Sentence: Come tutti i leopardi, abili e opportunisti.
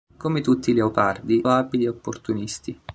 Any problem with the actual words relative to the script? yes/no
no